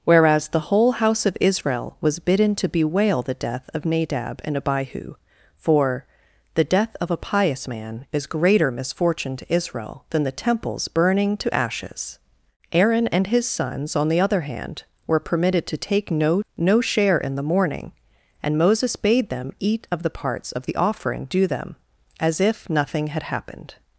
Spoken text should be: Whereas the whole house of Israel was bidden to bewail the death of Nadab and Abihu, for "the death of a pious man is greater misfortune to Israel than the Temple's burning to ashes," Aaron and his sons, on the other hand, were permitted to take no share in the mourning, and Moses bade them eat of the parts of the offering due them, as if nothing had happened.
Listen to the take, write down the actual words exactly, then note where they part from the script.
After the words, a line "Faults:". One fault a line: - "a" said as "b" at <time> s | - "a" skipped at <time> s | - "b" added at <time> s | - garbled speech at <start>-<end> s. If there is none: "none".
Whereas the whole house of Israel was bidden to bewail the death of Nadab and Abihu, for "the death of a pious man is greater misfortune to Israel than the Temple's burning to ashes," Aaron and his sons, on the other hand, were permitted to take no no share in the mourning, and Moses bade them eat of the parts of the offering due them, as if nothing had happened.
Faults:
- "no" added at 16.6 s